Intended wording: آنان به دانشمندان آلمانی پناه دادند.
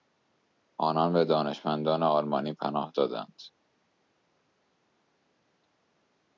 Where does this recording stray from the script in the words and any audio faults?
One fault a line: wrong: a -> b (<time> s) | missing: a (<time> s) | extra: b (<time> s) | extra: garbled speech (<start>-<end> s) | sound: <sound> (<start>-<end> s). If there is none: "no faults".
no faults